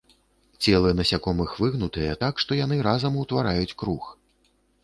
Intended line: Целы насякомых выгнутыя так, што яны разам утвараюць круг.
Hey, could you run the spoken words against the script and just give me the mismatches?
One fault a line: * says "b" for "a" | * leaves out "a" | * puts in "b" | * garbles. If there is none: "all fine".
all fine